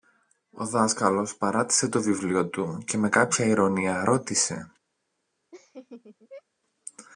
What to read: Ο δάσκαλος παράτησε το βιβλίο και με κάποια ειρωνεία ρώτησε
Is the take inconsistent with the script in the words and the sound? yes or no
yes